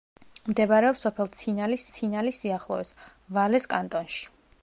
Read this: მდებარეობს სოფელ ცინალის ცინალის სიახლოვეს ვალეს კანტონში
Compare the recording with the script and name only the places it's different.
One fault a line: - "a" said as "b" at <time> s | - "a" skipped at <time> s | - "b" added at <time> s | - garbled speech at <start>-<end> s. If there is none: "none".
none